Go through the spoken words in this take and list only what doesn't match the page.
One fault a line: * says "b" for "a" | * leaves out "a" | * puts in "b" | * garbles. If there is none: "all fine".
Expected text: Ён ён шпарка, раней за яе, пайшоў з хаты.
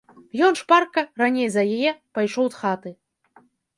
* leaves out "ён"